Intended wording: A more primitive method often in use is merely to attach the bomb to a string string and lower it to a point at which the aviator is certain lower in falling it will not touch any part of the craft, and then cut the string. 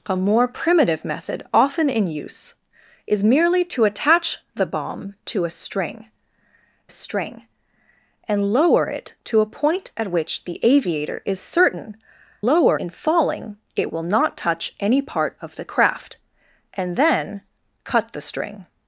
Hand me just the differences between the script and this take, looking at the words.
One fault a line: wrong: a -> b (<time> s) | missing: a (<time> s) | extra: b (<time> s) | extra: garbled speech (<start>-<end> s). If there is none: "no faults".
no faults